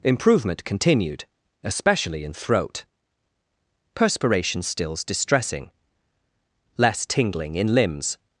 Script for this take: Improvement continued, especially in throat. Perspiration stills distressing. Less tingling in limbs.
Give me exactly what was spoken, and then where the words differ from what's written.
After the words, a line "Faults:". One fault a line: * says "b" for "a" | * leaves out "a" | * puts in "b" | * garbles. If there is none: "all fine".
Improvement continued, especially in throat. Perspiration stills distressing. Less tingling in limbs.
Faults:
all fine